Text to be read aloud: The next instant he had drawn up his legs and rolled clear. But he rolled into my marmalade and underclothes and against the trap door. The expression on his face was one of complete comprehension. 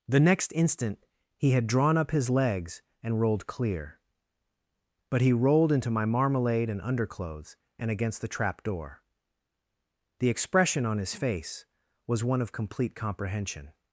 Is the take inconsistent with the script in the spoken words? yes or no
no